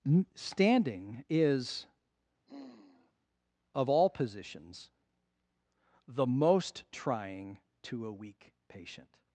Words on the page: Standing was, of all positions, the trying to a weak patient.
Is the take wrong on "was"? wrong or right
wrong